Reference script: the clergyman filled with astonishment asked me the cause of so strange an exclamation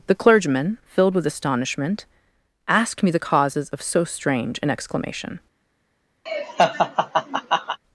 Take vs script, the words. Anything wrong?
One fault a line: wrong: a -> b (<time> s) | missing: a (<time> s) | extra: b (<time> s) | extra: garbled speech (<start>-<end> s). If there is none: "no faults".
wrong: cause -> causes (3.2 s)